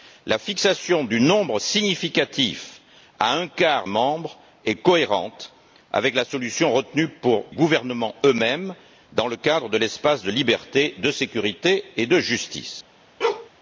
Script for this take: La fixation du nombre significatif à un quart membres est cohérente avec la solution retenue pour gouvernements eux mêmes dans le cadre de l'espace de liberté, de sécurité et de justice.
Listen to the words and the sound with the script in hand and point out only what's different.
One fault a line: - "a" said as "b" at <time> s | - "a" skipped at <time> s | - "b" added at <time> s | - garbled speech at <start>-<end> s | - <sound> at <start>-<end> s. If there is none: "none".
- bark at 13.2-13.5 s